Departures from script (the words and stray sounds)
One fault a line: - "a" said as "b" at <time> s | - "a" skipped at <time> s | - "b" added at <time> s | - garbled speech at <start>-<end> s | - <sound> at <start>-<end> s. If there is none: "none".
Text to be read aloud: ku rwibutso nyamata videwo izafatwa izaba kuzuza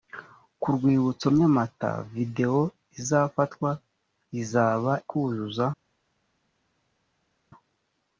none